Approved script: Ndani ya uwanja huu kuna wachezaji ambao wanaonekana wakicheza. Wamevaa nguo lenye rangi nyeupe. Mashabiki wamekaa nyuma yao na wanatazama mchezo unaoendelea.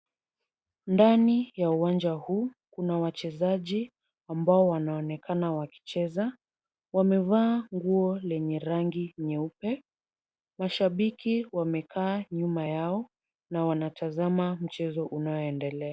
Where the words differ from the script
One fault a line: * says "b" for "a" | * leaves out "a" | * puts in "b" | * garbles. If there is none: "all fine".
all fine